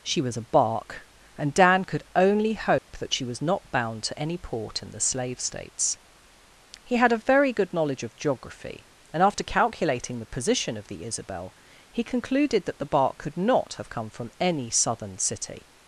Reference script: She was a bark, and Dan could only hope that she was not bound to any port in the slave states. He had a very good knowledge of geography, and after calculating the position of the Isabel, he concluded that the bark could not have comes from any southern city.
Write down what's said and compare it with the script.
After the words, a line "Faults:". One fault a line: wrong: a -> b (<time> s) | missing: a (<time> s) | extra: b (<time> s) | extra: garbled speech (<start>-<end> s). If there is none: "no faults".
She was a bark, and Dan could only hope that she was not bound to any port in the slave states. He had a very good knowledge of geography, and after calculating the position of the Isabel, he concluded that the bark could not have come from any southern city.
Faults:
wrong: comes -> come (13.9 s)